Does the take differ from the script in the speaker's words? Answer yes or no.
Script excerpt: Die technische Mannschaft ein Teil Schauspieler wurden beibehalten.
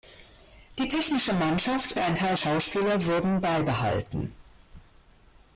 no